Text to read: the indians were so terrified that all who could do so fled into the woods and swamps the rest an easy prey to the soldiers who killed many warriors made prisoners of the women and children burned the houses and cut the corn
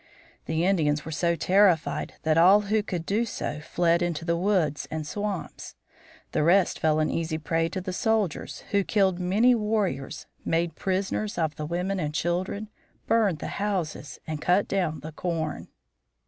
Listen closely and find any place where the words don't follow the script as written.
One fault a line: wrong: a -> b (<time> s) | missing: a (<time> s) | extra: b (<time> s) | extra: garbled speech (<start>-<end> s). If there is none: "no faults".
extra: fell (6.8 s)
extra: down (14.7 s)